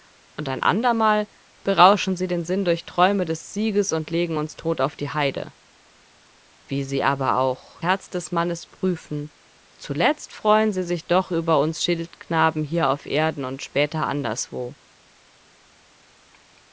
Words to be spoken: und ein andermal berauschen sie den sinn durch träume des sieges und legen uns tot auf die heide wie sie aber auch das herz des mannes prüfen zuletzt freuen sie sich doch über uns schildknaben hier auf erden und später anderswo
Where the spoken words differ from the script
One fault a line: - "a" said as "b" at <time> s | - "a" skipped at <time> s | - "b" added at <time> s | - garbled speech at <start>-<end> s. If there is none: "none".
- "das" skipped at 7.8 s